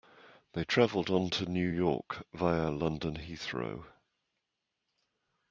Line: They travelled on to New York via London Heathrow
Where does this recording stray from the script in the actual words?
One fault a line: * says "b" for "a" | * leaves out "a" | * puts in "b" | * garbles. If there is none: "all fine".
all fine